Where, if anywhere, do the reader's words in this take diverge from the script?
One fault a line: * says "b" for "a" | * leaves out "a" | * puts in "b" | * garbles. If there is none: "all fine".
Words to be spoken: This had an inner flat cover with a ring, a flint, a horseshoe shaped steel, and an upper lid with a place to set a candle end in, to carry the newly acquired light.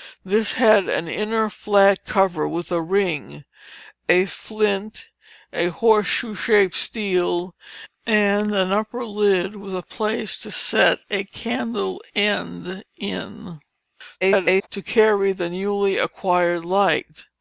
* garbles